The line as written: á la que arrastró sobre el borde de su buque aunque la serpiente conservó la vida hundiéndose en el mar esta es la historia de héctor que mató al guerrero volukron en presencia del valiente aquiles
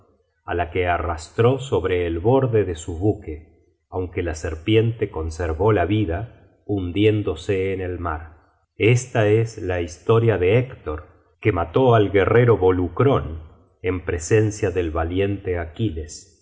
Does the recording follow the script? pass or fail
pass